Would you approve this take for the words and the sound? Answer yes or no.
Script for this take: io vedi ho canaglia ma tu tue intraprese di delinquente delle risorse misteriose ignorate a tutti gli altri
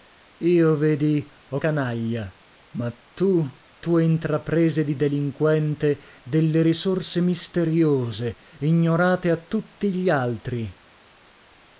yes